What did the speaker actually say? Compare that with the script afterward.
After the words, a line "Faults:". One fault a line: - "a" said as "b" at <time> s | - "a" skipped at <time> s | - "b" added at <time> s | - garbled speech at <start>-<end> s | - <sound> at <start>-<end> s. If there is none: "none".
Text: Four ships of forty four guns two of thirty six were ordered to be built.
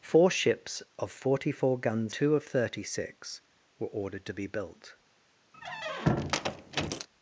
Four ships of forty four guns two of thirty six were ordered to be built.
Faults:
- squeak at 5.5-7.1 s